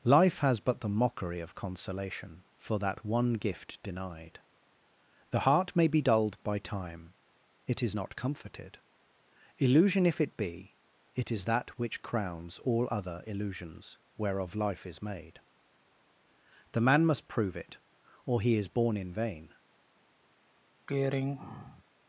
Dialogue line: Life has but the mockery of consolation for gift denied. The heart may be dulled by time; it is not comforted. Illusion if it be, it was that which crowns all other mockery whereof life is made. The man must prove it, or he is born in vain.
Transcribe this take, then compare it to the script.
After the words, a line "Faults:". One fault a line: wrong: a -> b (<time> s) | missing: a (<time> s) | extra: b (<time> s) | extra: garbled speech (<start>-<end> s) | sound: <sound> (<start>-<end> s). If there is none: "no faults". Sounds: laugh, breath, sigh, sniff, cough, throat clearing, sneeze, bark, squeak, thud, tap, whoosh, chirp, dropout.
Life has but the mockery of consolation for that one gift denied. The heart may be dulled by time; it is not comforted. Illusion if it be, it is that which crowns all other illusions whereof life is made. The man must prove it, or he is born in vain.
Faults:
extra: that one (2.8 s)
wrong: was -> is (11.3 s)
wrong: mockery -> illusions (13.2 s)
sound: throat clearing (20.9-21.8 s)